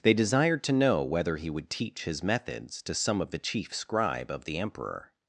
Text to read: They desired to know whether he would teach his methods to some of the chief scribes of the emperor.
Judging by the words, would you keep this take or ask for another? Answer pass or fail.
fail